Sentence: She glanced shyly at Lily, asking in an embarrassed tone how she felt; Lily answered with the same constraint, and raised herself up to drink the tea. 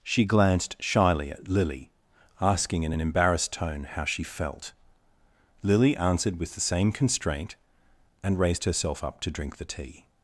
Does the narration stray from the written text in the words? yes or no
no